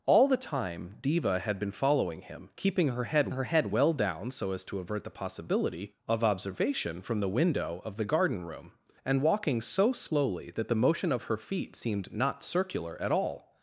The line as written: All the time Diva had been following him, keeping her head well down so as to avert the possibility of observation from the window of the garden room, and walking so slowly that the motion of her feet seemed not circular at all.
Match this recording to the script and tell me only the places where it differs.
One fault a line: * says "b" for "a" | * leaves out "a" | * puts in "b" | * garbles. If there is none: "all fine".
* puts in "her head"